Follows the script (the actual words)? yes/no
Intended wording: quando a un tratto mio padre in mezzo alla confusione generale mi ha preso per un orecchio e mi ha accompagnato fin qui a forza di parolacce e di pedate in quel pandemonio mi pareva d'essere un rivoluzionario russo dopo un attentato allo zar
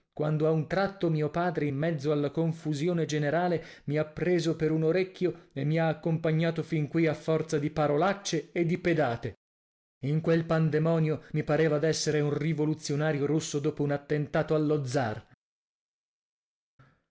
yes